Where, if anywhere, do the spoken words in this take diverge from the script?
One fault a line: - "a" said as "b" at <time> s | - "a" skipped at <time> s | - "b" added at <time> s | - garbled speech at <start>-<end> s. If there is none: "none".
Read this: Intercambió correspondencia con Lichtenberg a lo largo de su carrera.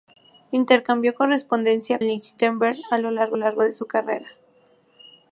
- "con" skipped at 2.0 s
- "largo" added at 3.3 s